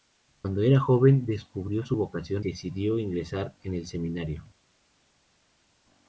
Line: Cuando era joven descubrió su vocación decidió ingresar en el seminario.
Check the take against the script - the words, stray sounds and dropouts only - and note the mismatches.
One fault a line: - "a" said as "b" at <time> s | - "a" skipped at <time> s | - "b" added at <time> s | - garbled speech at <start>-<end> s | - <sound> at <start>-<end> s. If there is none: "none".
none